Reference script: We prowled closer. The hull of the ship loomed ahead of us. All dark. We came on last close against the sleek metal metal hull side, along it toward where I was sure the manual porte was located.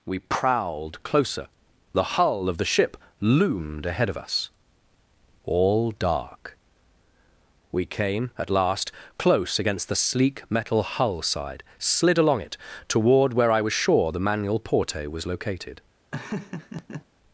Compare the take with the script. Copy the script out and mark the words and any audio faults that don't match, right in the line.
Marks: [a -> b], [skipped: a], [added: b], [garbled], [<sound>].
We prowled closer. The hull of the ship loomed ahead of us. All dark. We came [on -> at] last close against the sleek metal [skipped: metal] hull side, [added: slid] along it toward where I was sure the manual porte was located. [laugh]